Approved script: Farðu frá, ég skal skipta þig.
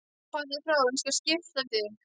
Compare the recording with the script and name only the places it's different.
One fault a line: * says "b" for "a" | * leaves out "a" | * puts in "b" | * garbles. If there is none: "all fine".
all fine